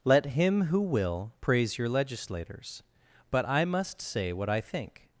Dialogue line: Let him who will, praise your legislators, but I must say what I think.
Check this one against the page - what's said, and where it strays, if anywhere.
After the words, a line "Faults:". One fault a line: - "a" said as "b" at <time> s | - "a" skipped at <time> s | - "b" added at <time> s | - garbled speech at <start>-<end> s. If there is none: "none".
Let him who will, praise your legislators, but I must say what I think.
Faults:
none